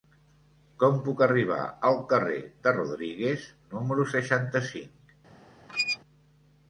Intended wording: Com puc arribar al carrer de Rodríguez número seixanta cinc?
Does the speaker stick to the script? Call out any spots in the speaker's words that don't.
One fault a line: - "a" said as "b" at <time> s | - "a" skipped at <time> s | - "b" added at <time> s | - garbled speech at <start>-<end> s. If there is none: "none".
none